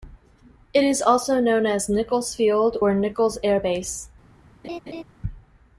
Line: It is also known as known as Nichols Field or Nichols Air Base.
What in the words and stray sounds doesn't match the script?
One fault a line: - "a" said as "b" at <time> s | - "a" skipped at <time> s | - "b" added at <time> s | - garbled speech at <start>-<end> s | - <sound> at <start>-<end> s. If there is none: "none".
- "known as" skipped at 1.9 s
- laugh at 4.6-5.0 s